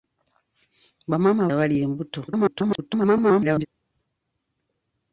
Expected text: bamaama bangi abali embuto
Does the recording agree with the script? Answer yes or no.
no